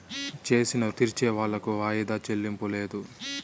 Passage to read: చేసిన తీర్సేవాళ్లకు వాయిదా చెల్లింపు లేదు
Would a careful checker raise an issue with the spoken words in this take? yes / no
no